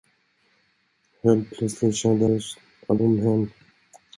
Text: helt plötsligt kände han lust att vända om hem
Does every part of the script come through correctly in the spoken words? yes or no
no